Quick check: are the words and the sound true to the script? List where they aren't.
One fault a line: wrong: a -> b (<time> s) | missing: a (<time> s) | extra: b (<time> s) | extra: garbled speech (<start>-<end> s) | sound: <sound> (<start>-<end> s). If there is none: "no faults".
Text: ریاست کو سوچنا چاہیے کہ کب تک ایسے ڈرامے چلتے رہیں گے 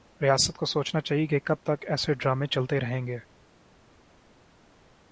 no faults